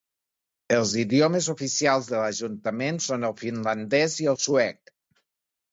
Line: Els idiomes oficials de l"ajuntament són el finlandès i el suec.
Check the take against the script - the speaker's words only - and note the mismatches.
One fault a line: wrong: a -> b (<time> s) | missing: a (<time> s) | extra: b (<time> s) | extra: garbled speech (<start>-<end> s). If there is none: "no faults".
no faults